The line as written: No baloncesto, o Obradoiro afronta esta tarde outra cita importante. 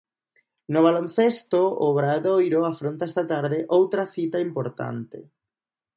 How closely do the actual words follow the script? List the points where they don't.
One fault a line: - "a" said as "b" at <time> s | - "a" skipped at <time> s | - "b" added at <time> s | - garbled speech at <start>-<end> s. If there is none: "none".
none